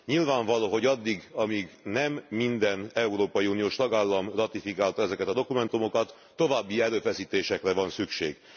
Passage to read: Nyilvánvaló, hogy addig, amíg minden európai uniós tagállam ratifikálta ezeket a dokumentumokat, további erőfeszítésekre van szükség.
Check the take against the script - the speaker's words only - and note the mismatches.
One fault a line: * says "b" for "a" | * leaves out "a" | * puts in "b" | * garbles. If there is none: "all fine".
* puts in "nem"